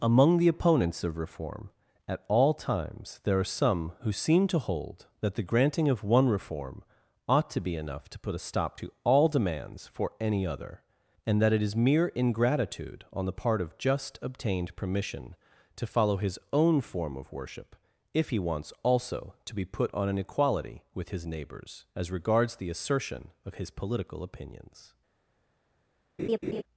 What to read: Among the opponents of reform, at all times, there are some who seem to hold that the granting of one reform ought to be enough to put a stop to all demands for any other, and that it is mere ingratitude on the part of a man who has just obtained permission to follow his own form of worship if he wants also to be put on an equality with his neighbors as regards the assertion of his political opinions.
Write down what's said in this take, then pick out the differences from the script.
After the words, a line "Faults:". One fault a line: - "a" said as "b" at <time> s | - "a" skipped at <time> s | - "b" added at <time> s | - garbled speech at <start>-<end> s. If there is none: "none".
Among the opponents of reform, at all times, there are some who seem to hold that the granting of one reform ought to be enough to put a stop to all demands for any other, and that it is mere ingratitude on the part of just obtained permission to follow his own form of worship if he wants also to be put on an equality with his neighbors as regards the assertion of his political opinions.
Faults:
- "a man who has" skipped at 13.8 s